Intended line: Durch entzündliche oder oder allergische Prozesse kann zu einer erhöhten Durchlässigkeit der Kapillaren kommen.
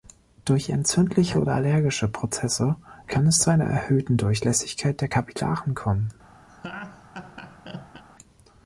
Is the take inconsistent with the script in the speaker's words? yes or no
yes